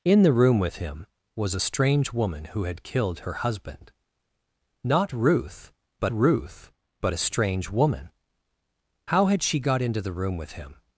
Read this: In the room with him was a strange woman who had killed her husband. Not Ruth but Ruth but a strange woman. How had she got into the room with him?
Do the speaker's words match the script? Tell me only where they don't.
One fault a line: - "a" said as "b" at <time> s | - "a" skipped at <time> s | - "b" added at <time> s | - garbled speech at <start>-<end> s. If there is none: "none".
none